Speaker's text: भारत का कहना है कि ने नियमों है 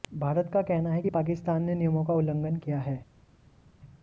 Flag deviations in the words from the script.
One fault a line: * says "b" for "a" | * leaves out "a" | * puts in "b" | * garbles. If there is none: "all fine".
* puts in "पाकिस्तान"
* puts in "का उल्लंघन किया"